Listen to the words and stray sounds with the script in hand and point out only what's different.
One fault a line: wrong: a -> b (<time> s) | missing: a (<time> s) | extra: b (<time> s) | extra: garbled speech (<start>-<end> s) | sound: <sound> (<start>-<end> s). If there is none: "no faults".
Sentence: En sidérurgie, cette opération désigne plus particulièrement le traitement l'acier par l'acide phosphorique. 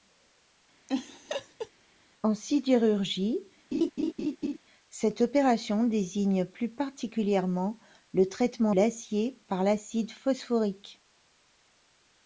sound: laugh (0.9-1.7 s)
sound: laugh (3.7-4.6 s)